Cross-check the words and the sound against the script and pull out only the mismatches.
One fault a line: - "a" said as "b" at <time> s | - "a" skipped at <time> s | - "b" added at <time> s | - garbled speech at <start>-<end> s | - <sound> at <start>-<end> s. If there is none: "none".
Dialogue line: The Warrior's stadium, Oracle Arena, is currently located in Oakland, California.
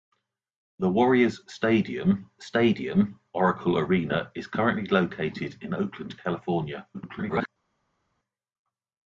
- "stadium" added at 2.5 s
- garbled speech at 6.9-7.5 s